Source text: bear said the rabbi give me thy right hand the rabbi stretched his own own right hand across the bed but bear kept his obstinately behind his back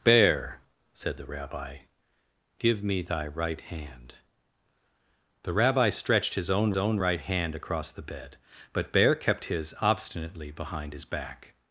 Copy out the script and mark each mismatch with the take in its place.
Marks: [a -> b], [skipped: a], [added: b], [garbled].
bear said the rabbi give me thy right hand the rabbi stretched his own own right hand across the bed but bear kept his obstinately behind his back